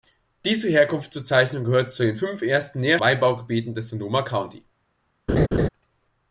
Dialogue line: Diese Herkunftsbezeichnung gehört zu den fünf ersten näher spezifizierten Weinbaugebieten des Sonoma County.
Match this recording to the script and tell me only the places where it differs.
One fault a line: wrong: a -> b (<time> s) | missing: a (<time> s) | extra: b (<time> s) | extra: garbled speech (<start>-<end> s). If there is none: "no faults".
missing: spezifizierten (3.0 s)